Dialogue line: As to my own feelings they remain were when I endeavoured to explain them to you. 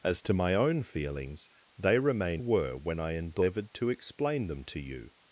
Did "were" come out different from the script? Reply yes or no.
no